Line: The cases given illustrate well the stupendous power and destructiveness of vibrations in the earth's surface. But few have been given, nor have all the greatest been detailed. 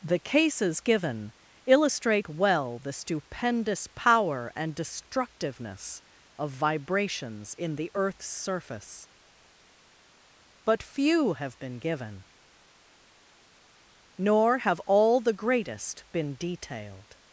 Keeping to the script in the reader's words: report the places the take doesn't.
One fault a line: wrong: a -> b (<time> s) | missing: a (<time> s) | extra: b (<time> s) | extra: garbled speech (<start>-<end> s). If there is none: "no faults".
no faults